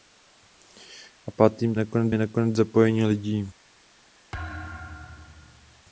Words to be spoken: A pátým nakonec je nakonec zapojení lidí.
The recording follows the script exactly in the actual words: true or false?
true